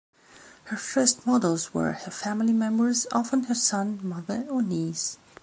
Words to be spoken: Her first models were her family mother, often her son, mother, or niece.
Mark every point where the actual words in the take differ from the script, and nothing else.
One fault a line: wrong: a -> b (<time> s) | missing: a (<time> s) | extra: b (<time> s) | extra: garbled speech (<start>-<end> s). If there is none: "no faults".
wrong: mother -> members (2.5 s)